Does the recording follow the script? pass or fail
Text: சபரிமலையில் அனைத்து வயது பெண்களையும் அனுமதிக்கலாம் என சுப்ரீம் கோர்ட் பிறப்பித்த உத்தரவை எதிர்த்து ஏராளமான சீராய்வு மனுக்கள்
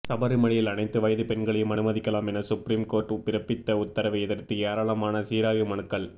pass